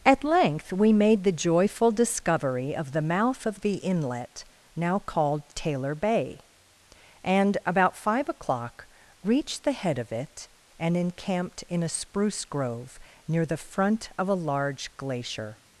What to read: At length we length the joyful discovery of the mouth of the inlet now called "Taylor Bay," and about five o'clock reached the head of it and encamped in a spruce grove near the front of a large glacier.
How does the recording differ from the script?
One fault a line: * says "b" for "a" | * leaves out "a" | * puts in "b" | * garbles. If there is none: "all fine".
* says "made" for "length"